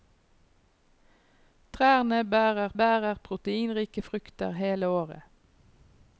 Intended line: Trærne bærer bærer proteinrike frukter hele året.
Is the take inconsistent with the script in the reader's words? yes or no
no